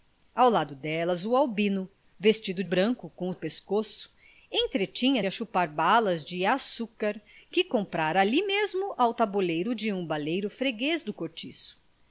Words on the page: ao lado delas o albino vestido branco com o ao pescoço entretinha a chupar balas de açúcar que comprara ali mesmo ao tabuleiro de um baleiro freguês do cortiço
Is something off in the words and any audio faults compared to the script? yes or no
no